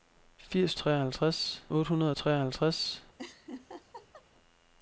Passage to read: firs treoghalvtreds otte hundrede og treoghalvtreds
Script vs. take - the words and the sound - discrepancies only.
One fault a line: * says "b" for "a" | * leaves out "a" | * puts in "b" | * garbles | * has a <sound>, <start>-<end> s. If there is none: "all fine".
* has a laugh, 3.2-4.3 s